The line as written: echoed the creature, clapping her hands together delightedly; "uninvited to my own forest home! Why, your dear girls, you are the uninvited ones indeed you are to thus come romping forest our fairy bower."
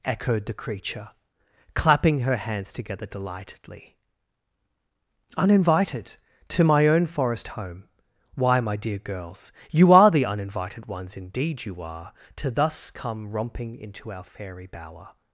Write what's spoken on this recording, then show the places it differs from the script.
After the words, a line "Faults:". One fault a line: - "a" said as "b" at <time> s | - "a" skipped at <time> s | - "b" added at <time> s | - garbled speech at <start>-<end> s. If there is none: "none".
echoed the creature, clapping her hands together delightedly; "uninvited to my own forest home! Why, my dear girls, you are the uninvited ones indeed you are to thus come romping into our fairy bower."
Faults:
- "your" said as "my" at 8.6 s
- "forest" said as "into" at 13.8 s